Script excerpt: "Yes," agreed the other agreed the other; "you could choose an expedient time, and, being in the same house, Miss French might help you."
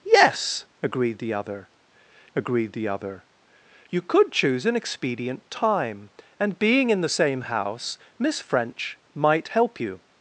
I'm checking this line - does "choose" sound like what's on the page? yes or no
yes